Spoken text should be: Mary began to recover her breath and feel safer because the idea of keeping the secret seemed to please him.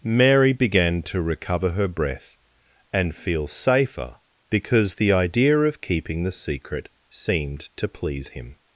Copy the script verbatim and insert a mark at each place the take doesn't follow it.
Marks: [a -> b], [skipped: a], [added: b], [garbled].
Mary began to recover her breath and feel safer because the idea of keeping the secret seemed to please him.